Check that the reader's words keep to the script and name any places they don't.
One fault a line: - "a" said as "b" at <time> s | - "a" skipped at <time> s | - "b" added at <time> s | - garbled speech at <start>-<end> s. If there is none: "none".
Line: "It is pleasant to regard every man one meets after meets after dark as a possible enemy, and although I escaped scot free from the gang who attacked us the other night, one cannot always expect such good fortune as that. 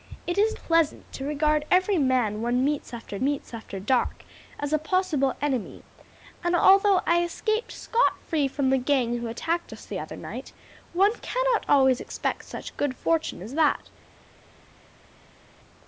none